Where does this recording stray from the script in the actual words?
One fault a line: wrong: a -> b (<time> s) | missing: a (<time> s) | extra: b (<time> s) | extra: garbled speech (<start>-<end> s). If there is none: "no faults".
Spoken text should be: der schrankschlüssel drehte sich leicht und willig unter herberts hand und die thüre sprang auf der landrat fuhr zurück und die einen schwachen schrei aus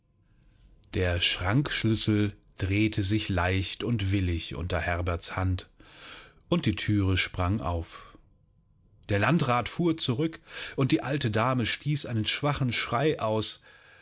extra: alte dame stieß (11.0 s)